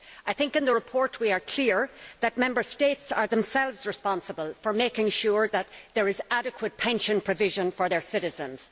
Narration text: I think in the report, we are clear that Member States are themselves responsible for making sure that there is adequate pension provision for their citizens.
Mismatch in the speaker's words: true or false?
false